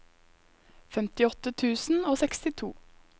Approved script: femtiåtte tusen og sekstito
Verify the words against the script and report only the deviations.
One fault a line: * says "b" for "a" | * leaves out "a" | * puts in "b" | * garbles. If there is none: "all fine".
all fine